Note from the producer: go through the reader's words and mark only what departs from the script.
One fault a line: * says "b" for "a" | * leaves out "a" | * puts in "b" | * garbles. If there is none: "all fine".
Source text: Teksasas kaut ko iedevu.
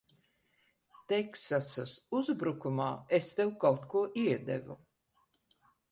* puts in "uzbrukumā es tev"